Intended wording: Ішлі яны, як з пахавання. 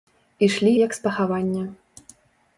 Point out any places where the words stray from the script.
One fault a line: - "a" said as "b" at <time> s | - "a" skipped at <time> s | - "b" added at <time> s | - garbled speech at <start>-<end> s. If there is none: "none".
- "яны" skipped at 0.7 s